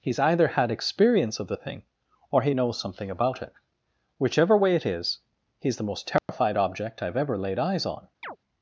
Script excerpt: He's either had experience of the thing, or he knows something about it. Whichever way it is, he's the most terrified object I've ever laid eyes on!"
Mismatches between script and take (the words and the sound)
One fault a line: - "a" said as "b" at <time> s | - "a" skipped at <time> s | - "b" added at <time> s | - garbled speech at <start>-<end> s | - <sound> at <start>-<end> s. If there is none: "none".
- dropout at 6.2-6.3 s
- chirp at 8.2-8.4 s